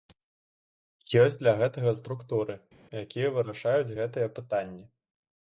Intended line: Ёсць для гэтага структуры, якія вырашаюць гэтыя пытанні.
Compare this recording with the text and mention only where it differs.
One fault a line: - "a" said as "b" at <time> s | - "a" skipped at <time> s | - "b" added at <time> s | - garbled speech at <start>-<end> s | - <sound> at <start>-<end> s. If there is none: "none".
none